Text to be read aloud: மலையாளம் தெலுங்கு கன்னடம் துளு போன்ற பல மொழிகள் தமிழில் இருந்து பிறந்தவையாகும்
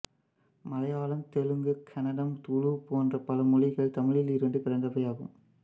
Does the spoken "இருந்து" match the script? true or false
true